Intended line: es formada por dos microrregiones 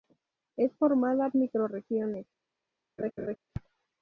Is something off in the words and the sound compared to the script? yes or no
yes